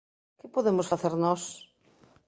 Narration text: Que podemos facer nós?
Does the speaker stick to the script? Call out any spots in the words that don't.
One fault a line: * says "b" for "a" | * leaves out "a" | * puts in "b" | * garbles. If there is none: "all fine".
all fine